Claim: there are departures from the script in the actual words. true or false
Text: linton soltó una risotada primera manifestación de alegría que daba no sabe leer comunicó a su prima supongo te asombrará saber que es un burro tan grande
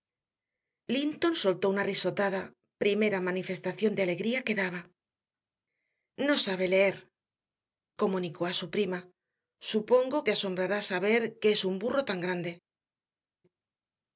false